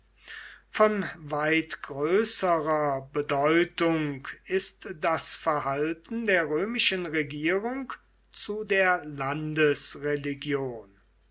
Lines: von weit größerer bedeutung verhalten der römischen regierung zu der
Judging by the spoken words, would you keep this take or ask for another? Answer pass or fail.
fail